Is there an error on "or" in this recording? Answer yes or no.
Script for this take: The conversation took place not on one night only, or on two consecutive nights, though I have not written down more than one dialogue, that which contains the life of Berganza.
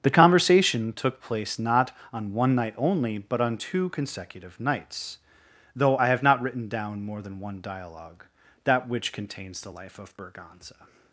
yes